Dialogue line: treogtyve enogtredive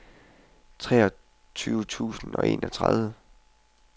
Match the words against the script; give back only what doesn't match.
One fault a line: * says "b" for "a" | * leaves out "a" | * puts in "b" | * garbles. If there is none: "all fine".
* puts in "tusind og"